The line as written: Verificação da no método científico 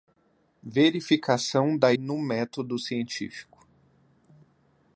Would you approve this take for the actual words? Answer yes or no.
yes